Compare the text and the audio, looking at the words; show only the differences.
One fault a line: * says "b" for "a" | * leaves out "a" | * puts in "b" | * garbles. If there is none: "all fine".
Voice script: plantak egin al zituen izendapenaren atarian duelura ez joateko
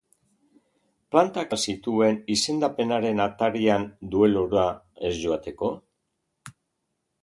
* leaves out "egin"